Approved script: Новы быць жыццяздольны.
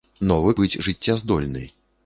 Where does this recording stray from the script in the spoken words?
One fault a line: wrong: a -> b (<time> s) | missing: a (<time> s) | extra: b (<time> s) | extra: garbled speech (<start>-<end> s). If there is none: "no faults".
no faults